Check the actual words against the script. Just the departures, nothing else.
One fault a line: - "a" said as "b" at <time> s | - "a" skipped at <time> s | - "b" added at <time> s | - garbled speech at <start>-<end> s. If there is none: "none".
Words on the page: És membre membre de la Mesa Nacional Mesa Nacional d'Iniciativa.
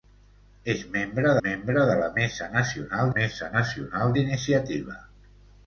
none